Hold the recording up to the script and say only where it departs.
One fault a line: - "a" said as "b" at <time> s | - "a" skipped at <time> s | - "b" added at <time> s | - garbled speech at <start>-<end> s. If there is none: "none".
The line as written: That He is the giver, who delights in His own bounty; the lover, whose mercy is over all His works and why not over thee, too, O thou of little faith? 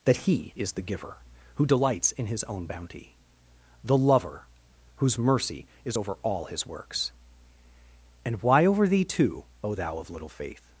- "not" skipped at 8.7 s